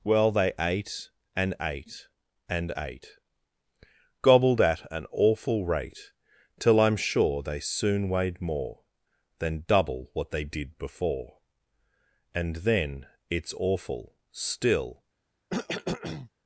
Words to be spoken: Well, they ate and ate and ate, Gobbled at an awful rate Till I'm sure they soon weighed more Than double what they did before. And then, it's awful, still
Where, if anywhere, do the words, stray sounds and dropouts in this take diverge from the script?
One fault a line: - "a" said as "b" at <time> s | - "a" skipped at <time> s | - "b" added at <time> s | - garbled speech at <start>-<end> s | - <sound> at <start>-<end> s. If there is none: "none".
- cough at 15.5-16.3 s